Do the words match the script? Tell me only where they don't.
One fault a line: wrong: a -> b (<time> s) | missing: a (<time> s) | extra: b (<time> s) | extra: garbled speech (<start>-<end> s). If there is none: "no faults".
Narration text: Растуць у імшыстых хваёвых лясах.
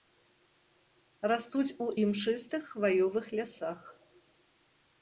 no faults